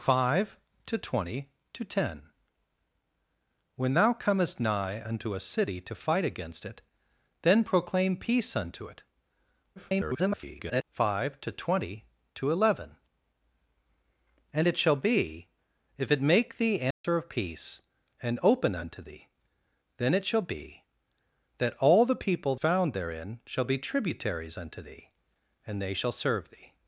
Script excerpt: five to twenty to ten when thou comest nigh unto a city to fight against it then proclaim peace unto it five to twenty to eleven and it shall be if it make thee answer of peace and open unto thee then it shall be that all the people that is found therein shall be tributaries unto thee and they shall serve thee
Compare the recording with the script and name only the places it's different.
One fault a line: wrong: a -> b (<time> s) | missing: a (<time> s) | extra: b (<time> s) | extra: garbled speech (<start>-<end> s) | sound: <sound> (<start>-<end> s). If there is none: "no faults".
extra: garbled speech (9.8-10.8 s)
sound: dropout (16.9-17.0 s)
missing: that is (22.5 s)